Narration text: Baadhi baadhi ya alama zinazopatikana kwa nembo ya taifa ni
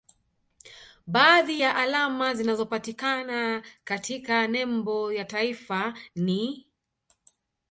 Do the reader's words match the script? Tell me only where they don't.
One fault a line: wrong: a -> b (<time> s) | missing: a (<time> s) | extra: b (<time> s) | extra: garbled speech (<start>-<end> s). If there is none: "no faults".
missing: baadhi (1.6 s)
wrong: kwa -> katika (3.8 s)